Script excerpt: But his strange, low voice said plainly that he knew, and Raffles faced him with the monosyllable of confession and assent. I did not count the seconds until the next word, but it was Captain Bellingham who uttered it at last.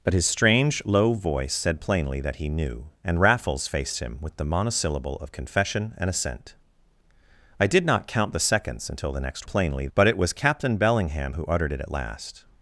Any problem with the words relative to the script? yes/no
yes